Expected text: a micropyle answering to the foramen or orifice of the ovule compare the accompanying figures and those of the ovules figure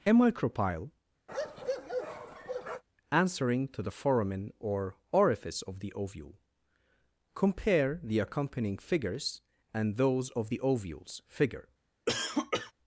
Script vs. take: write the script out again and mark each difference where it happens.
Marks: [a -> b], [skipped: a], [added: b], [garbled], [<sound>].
a micropyle [bark] answering to the foramen or orifice of the ovule compare the accompanying figures and those of the ovules figure [cough]